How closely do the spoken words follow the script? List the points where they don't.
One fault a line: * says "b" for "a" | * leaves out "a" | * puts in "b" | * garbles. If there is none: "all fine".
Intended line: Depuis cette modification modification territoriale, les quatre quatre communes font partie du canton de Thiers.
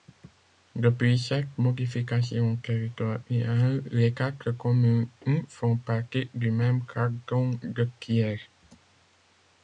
* leaves out "modification"
* leaves out "quatre"
* puts in "même"